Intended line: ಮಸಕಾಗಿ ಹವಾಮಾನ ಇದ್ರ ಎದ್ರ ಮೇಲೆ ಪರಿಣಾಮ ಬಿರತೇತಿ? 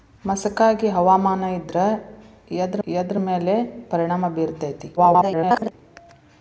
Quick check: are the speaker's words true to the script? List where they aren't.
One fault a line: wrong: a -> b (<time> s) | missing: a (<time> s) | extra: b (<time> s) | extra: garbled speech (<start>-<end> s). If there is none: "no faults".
extra: ಎದ್ರ (2.9 s)
extra: garbled speech (5.0-5.7 s)